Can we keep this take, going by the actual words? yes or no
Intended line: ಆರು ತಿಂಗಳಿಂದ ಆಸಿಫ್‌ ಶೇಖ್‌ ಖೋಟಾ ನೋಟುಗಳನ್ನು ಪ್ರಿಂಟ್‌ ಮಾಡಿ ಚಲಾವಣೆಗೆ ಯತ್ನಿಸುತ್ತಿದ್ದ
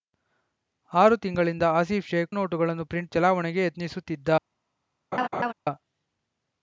no